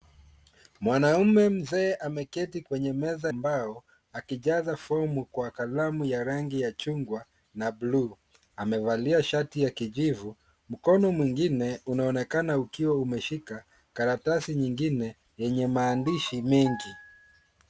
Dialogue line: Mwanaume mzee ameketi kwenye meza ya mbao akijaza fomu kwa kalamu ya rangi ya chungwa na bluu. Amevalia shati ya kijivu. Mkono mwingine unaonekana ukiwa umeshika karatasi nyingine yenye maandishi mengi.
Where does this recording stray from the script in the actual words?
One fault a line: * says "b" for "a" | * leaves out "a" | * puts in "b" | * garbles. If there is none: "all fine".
* leaves out "ya"